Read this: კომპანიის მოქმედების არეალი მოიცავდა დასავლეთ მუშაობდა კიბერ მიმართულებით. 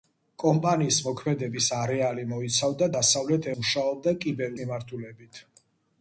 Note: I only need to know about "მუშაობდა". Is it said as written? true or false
true